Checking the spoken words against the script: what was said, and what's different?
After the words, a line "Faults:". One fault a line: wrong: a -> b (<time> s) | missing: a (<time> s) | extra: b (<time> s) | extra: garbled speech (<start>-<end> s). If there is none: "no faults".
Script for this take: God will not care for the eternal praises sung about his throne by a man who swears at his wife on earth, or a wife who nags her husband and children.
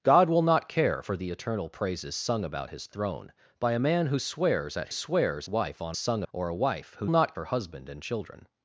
God will not care for the eternal praises sung about his throne by a man who swears at swears wife on sung, or a wife who not her husband and children.
Faults:
wrong: his -> swears (4.9 s)
wrong: earth -> sung (5.9 s)
wrong: nags -> not (7.1 s)